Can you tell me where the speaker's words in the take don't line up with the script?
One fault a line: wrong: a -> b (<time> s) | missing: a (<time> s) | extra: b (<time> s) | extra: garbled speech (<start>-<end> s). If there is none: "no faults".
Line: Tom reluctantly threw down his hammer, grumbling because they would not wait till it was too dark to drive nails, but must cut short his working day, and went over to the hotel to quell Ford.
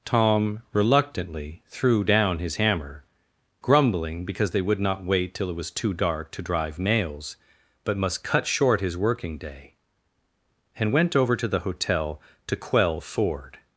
no faults